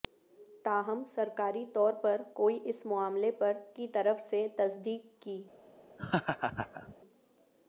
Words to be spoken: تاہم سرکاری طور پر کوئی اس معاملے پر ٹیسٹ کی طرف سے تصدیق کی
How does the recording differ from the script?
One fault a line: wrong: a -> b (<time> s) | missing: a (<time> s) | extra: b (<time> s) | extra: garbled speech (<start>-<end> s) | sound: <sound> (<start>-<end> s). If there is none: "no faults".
missing: ٹیسٹ (3.5 s)
sound: laugh (6.0-6.9 s)